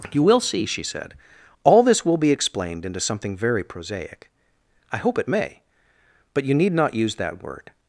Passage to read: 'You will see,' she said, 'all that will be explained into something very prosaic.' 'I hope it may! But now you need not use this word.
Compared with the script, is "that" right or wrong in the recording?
wrong